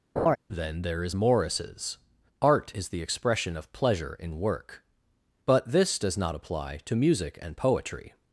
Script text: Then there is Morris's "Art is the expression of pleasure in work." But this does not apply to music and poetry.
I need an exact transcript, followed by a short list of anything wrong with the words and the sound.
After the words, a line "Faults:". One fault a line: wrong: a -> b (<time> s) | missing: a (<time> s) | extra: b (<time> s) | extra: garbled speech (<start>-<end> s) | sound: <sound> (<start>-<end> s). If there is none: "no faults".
Then there is Morris's "Art is the expression of pleasure in work." But this does not apply to music and poetry.
Faults:
sound: laugh (0.2-0.4 s)